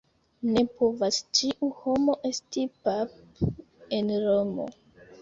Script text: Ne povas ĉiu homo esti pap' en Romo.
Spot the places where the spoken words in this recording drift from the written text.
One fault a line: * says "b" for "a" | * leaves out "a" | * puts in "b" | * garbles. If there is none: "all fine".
all fine